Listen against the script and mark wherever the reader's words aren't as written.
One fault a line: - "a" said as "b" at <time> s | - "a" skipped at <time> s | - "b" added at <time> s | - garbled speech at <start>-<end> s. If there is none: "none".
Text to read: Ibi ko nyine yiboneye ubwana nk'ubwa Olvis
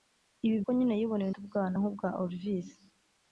none